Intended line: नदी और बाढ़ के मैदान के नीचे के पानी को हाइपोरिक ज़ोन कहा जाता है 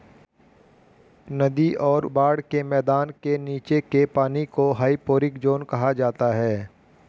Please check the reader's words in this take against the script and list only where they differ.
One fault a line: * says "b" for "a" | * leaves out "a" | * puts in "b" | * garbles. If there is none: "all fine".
all fine